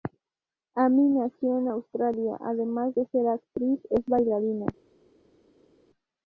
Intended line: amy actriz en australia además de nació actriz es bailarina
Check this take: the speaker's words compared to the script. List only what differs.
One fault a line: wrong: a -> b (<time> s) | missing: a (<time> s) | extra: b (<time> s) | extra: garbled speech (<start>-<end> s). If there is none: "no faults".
wrong: actriz -> nació (1.1 s)
wrong: nació -> ser (3.1 s)